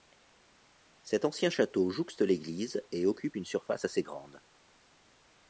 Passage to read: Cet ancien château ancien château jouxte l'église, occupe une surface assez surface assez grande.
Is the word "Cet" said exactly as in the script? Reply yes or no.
yes